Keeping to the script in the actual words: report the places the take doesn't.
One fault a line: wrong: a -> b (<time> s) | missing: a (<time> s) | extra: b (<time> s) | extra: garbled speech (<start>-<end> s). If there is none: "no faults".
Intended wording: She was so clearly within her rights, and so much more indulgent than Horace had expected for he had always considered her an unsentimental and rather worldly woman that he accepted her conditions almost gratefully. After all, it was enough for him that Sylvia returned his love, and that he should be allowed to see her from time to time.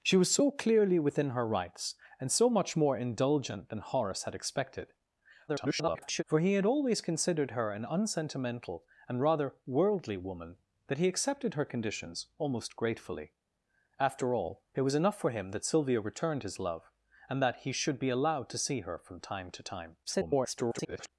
extra: garbled speech (5.5-6.2 s)
extra: garbled speech (20.0-21.1 s)